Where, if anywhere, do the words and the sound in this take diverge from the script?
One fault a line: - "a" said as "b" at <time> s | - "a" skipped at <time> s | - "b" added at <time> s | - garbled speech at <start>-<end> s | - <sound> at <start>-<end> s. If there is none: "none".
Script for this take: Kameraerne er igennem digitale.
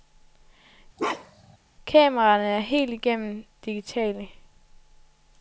- bark at 1.0-1.6 s
- "helt" added at 2.6 s